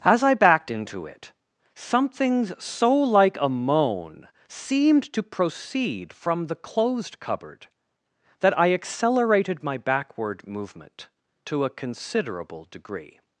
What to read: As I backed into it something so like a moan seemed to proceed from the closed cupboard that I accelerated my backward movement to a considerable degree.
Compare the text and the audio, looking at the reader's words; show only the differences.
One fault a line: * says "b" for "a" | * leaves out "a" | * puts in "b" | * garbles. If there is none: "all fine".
all fine